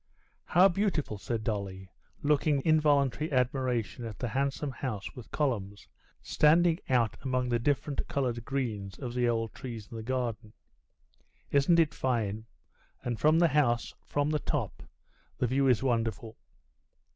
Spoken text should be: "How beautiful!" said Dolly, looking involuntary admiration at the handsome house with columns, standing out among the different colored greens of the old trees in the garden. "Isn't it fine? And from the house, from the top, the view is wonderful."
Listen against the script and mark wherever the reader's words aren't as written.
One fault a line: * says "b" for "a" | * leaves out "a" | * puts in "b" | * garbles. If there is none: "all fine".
all fine